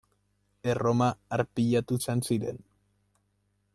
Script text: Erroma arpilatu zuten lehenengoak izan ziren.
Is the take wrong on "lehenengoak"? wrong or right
wrong